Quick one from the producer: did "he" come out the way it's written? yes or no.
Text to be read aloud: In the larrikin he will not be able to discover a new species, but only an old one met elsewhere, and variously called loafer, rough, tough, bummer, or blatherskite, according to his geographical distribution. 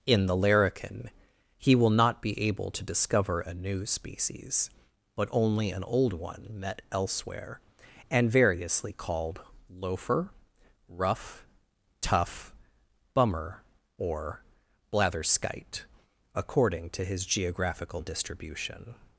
yes